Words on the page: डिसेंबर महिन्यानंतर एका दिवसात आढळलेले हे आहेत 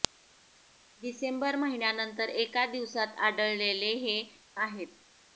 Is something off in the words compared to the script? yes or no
no